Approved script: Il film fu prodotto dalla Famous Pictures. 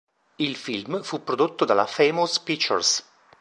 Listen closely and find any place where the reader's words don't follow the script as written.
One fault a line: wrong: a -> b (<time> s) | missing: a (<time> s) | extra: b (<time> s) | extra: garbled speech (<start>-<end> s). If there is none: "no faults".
no faults